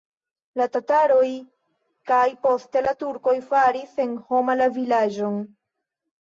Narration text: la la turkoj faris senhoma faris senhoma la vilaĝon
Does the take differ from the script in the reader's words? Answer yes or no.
yes